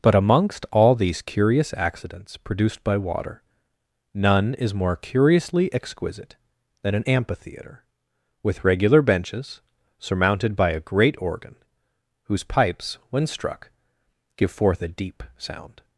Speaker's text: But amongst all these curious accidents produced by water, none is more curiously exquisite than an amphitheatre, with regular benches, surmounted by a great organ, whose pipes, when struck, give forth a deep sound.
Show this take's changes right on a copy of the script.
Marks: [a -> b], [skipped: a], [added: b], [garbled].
But amongst all these curious accidents produced by water, none is more curiously exquisite than an amphitheatre, with regular benches, surmounted by a great organ, whose pipes, when struck, give forth a deep sound.